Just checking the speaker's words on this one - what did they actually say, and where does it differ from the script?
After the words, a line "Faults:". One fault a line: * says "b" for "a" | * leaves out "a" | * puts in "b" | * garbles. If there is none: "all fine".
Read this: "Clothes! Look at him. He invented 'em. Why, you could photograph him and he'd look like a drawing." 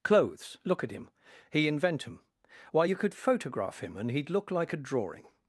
"Clothes! Look at him. He invent 'em. Why, you could photograph him and he'd look like a drawing."
Faults:
* says "invent" for "invented"